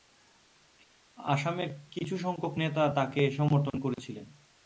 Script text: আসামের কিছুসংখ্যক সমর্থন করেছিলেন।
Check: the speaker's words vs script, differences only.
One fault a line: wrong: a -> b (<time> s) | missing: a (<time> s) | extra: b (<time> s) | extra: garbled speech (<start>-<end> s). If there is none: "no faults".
extra: নেতা তাকে (2.6 s)